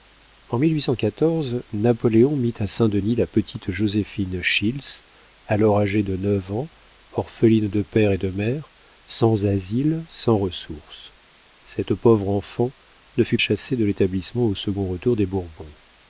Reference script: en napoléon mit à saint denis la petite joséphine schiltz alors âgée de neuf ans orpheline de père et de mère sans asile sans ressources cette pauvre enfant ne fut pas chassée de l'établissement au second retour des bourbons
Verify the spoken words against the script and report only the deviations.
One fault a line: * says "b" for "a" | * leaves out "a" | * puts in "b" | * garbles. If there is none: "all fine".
* leaves out "pas"